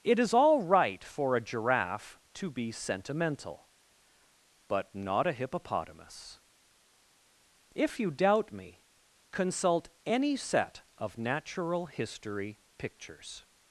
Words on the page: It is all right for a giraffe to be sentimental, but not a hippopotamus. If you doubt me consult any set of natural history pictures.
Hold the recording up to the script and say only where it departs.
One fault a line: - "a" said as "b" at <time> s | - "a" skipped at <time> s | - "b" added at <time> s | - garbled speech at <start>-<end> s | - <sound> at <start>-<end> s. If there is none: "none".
none